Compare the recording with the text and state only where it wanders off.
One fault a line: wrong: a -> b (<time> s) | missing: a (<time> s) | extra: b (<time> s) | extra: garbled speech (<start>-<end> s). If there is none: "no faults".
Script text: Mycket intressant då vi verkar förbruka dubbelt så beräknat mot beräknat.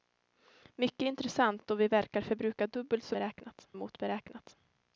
no faults